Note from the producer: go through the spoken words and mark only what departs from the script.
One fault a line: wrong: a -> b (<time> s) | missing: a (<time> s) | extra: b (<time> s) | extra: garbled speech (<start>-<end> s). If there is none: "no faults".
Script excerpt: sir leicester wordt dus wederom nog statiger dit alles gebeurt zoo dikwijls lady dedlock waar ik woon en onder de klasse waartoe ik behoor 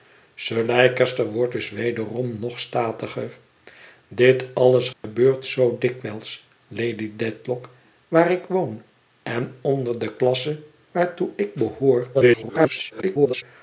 extra: garbled speech (12.1-13.4 s)